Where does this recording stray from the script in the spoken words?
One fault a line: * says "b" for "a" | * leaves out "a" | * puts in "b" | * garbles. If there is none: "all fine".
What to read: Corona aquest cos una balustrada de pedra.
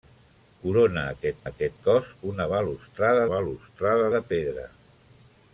* puts in "aquest"
* puts in "balustrada"